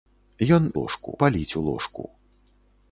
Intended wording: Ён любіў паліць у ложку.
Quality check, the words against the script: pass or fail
fail